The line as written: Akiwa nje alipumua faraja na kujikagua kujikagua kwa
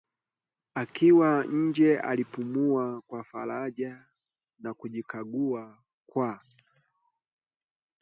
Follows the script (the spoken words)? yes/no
no